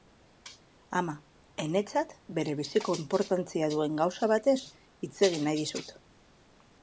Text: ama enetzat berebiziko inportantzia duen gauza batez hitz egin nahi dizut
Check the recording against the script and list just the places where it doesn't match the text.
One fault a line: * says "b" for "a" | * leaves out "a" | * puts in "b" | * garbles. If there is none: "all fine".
all fine